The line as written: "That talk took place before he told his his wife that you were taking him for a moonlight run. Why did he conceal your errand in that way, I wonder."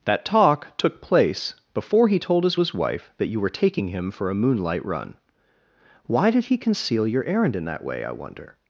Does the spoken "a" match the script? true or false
true